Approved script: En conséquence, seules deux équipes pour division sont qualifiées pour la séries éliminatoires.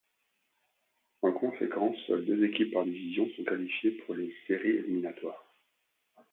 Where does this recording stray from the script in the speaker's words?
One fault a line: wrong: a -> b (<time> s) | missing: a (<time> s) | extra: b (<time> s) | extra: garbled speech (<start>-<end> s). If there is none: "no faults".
wrong: pour -> par (2.7 s)
wrong: la -> les (4.1 s)